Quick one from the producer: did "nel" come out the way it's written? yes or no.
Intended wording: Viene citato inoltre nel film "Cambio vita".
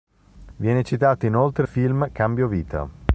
no